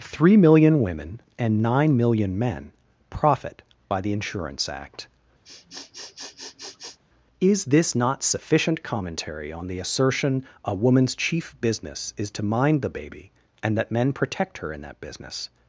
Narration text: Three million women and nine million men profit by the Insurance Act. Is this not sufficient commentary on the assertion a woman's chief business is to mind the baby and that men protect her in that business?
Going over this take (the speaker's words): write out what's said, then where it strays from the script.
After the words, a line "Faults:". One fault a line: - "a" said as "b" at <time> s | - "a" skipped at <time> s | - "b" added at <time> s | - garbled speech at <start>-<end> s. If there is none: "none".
Three million women and nine million men profit by the Insurance Act. Is this not sufficient commentary on the assertion a woman's chief business is to mind the baby and that men protect her in that business?
Faults:
none